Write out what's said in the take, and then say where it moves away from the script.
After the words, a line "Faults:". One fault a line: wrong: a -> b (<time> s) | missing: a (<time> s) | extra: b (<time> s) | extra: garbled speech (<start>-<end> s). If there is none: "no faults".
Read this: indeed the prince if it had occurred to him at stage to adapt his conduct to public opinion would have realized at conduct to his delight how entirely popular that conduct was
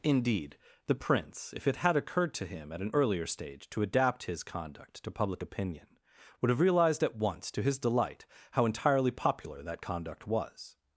indeed the prince if it had occurred to him at an earlier stage to adapt his conduct to public opinion would have realized at once to his delight how entirely popular that conduct was
Faults:
extra: an earlier (2.8 s)
wrong: conduct -> once (7.2 s)